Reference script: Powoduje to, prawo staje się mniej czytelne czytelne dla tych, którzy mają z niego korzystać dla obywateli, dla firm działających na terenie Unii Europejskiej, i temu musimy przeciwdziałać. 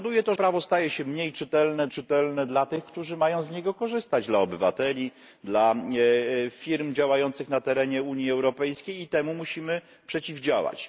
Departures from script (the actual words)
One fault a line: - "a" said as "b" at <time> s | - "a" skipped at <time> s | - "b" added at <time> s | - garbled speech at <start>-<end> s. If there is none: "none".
none